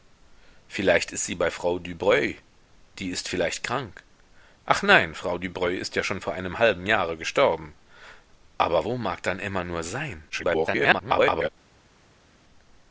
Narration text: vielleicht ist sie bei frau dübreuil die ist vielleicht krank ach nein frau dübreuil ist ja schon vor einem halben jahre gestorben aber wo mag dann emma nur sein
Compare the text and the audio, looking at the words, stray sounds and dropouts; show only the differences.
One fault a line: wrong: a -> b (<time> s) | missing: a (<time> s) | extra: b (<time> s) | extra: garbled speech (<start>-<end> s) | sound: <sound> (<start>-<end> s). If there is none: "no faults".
extra: garbled speech (10.3-11.5 s)